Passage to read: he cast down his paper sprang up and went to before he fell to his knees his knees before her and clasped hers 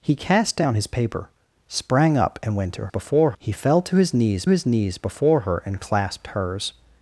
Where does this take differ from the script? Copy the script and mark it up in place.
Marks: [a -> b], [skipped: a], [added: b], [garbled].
he cast down his paper sprang up and went to before he fell to his knees his knees before her and clasped hers